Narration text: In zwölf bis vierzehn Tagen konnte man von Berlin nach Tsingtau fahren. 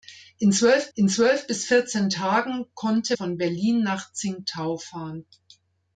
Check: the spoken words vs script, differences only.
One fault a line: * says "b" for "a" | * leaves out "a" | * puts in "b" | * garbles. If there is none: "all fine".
* puts in "in zwölf"
* leaves out "man"